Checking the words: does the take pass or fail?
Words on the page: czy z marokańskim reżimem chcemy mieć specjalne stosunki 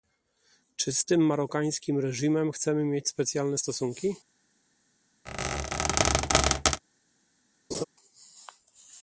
fail